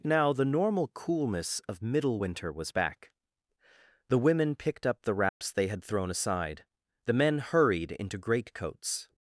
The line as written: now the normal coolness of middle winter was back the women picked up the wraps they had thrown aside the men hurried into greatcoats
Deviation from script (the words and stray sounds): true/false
true